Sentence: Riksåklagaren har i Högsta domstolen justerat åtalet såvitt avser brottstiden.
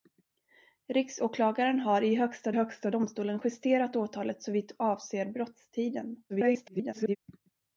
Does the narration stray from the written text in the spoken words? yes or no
yes